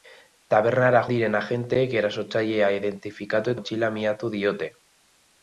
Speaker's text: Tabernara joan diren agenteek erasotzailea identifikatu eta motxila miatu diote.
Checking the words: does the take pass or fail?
fail